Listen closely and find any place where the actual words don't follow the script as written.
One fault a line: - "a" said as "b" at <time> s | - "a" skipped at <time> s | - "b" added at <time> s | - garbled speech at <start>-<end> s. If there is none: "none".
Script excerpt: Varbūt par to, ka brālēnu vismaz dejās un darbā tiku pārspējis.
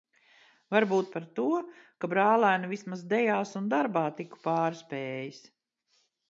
none